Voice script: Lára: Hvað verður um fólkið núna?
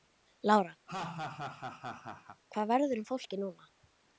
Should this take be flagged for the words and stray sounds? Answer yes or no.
yes